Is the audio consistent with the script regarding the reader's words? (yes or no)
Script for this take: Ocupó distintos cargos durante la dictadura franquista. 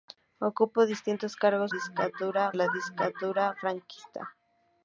no